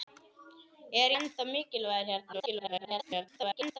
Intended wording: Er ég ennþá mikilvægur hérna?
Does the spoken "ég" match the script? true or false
false